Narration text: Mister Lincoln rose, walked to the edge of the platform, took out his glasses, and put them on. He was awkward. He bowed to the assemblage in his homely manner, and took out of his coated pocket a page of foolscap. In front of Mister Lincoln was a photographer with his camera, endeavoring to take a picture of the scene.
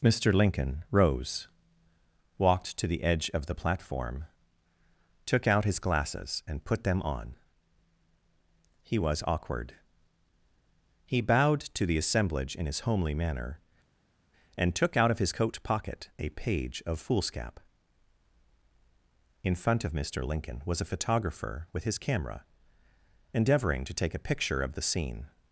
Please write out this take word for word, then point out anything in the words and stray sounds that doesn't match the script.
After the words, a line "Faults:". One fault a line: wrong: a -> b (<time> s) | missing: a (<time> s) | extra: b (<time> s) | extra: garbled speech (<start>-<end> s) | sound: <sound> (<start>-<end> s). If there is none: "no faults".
Mister Lincoln rose, walked to the edge of the platform, took out his glasses, and put them on. He was awkward. He bowed to the assemblage in his homely manner, and took out of his coat pocket a page of foolscap. In front of Mister Lincoln was a photographer with his camera, endeavoring to take a picture of the scene.
Faults:
wrong: coated -> coat (15.3 s)